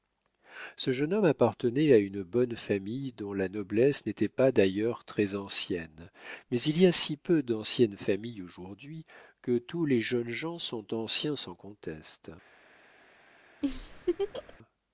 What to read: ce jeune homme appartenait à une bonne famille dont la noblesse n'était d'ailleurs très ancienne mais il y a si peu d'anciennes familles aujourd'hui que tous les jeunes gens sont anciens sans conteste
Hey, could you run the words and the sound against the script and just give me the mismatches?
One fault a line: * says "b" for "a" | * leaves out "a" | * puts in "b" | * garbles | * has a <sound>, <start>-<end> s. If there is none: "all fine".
* puts in "pas"
* has a laugh, 13.6-14.6 s